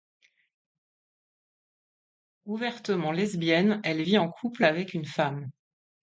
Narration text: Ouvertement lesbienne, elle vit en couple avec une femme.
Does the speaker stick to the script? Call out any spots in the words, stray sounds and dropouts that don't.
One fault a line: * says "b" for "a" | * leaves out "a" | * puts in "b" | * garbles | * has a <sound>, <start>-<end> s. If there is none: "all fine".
all fine